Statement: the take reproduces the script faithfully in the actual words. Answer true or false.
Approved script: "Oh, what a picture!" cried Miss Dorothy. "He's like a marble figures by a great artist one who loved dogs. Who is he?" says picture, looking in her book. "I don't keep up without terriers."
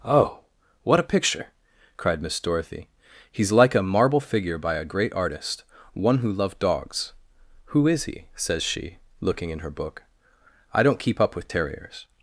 false